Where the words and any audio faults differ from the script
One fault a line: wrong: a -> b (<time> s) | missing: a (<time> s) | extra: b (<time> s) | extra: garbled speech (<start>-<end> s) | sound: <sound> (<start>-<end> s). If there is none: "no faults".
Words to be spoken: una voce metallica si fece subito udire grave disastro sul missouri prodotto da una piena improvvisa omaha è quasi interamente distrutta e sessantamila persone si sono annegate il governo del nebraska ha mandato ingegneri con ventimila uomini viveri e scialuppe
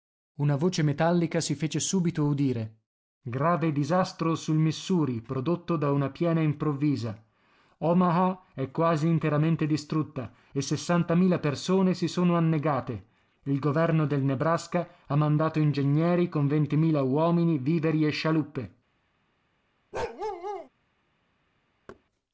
sound: bark (19.9-20.7 s)
sound: thud (21.9-22.0 s)